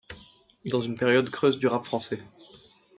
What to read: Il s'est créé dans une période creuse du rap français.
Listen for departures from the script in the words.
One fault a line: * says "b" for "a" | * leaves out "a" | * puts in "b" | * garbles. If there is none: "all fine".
* leaves out "s'est créé"